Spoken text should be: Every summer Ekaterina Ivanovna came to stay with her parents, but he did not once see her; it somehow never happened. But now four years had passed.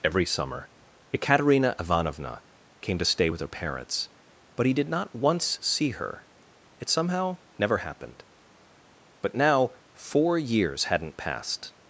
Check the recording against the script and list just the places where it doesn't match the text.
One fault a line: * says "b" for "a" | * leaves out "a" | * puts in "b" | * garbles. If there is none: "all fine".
* says "hadn't" for "had"